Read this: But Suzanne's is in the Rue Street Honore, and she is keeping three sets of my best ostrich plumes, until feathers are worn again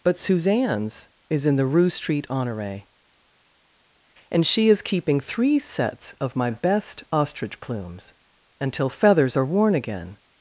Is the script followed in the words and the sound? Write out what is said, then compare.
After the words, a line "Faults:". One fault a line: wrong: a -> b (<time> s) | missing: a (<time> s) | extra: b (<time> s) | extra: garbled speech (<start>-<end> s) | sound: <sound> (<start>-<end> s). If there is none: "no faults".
But Suzanne's is in the Rue Street Honore, and she is keeping three sets of my best ostrich plumes, until feathers are worn again
Faults:
no faults